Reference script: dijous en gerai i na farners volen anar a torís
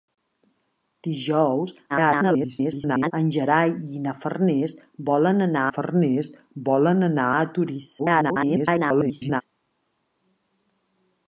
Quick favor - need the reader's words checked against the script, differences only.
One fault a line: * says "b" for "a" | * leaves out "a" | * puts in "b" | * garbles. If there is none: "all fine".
* garbles
* puts in "farners volen anar"
* garbles